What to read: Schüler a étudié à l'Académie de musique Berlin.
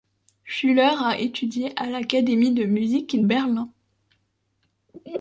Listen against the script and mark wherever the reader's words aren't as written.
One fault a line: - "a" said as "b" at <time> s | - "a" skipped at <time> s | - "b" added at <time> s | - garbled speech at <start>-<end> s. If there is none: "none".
none